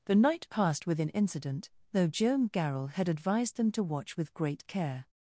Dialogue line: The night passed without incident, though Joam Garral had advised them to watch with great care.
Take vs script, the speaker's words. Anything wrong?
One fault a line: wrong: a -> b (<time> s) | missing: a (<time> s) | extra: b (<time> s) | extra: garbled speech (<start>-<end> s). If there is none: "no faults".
wrong: without -> within (0.9 s)